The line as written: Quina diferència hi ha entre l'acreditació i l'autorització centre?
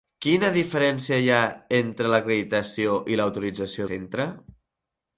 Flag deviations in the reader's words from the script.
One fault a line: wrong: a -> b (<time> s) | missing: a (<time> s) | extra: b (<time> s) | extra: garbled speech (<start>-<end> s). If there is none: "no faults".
no faults